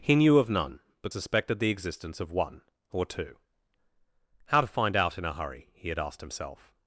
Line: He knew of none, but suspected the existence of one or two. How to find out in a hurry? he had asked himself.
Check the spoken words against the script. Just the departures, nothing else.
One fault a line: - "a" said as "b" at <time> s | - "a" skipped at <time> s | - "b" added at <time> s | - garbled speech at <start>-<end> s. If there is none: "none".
none